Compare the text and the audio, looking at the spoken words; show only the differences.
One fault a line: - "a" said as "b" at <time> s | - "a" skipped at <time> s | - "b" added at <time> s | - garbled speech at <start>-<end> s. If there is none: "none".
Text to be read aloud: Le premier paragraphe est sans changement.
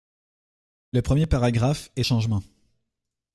- "sans" skipped at 2.0 s